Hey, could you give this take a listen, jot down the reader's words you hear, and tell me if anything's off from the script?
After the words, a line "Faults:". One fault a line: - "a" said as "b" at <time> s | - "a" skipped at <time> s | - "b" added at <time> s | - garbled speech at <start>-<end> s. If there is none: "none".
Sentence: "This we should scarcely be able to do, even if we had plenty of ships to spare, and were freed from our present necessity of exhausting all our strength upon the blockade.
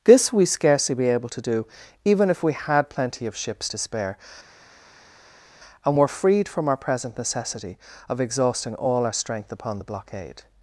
"This we scarcely be able to do, even if we had plenty of ships to spare, and were freed from our present necessity of exhausting all our strength upon the blockade.
Faults:
- "should" skipped at 0.5 s